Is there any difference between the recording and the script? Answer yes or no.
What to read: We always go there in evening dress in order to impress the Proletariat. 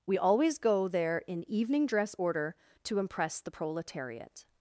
yes